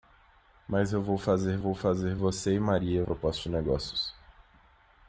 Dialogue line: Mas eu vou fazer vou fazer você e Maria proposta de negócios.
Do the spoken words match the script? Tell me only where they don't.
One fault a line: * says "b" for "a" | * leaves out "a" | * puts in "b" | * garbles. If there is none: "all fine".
all fine